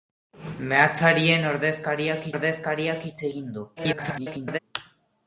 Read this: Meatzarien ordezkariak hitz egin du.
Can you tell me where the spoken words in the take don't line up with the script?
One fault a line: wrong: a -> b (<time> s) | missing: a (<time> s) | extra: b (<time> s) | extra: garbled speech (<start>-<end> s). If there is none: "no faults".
extra: ordezkariak (2.3 s)
extra: garbled speech (3.8-4.6 s)